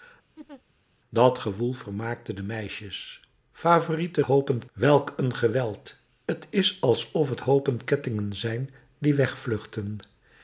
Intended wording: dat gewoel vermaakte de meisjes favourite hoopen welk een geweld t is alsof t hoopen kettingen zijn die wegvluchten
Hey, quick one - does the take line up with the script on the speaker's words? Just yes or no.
yes